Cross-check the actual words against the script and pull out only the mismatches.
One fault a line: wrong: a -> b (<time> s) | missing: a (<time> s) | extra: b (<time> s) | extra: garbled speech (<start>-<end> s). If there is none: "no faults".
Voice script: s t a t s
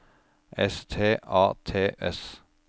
no faults